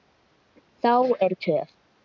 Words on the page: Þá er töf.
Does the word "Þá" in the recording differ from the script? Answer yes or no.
no